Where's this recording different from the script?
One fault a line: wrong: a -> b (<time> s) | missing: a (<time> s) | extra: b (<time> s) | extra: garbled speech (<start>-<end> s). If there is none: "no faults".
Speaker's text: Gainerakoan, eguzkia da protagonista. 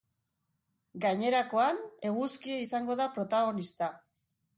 extra: izango (2.6 s)